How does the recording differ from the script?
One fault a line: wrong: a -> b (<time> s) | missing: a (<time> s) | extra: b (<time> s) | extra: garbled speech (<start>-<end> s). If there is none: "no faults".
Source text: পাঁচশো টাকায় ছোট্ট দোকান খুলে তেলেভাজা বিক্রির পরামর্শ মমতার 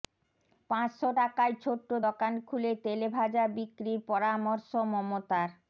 no faults